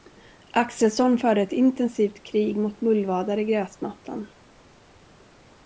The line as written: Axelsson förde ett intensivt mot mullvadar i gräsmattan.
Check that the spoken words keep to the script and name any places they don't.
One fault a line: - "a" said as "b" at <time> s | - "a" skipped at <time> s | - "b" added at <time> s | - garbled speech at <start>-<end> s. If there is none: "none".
- "krig" added at 2.3 s